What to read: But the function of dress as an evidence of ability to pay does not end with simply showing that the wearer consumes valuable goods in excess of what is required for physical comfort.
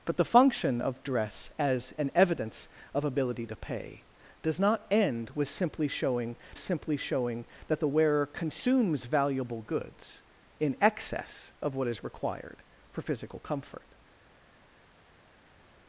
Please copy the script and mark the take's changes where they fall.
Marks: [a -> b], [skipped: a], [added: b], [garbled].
But the function of dress as an evidence of ability to pay does not end with simply showing [added: simply showing] that the wearer consumes valuable goods in excess of what is required for physical comfort.